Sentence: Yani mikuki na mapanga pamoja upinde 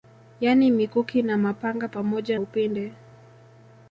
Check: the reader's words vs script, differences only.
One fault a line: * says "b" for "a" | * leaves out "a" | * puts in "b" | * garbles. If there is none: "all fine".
all fine